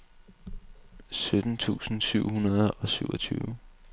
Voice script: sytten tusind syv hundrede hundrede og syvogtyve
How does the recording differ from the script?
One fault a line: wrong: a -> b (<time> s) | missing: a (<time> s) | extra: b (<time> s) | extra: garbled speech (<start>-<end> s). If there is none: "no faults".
missing: hundrede (2.7 s)